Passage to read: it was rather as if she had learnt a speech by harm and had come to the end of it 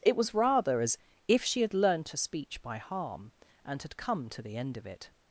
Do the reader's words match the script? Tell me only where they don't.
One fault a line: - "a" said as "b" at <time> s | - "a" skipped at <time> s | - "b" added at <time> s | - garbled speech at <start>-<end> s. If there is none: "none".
none